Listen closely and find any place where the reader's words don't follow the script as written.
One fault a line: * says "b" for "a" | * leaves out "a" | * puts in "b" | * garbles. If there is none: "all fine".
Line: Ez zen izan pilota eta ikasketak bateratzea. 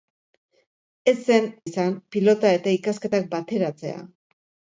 all fine